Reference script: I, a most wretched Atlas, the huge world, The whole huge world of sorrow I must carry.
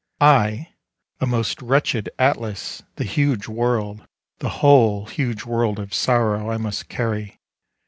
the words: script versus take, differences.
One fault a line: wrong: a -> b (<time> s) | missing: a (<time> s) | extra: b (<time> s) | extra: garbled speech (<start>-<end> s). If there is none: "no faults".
no faults